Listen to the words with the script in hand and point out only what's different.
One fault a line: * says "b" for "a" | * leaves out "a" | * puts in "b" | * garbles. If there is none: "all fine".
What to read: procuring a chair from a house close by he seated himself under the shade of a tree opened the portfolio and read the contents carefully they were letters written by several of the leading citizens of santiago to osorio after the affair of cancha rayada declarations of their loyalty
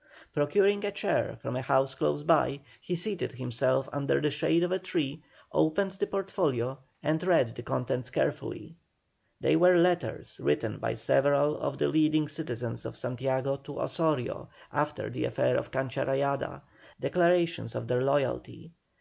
all fine